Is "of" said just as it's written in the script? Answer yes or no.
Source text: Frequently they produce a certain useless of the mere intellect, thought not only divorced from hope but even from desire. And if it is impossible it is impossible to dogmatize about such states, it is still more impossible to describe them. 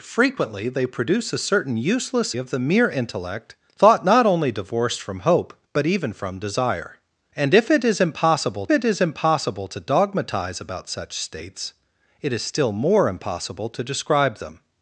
yes